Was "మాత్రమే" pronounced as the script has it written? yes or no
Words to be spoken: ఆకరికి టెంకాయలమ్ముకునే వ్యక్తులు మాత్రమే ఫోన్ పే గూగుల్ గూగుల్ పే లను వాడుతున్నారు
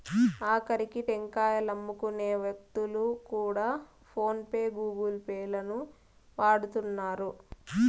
no